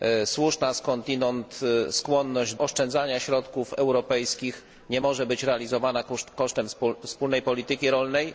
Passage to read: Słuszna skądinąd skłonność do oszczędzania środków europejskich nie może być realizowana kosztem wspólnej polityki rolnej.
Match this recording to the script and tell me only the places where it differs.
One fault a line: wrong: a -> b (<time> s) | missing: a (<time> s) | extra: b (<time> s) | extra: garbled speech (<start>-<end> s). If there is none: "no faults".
missing: do (2.5 s)